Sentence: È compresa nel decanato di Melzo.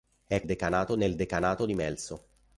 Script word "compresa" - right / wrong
wrong